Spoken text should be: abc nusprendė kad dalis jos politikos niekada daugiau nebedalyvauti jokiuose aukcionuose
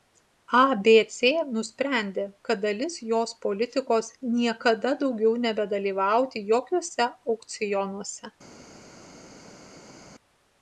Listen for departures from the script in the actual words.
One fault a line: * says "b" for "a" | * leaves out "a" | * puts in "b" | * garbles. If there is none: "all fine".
all fine